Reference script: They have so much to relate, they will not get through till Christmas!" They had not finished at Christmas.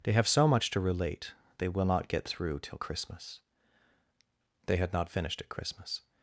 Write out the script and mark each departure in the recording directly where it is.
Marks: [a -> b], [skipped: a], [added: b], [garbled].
They have so much to relate, they will not get through till Christmas!" They had not finished at Christmas.